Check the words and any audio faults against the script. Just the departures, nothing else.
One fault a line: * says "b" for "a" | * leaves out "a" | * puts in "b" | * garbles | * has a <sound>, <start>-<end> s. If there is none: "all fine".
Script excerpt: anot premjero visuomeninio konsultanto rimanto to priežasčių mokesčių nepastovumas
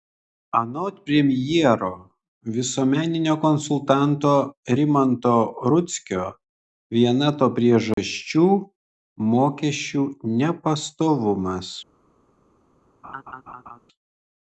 * puts in "rudzkio viena"
* has a dropout, 7.9-8.0 s
* has a laugh, 13.0-13.8 s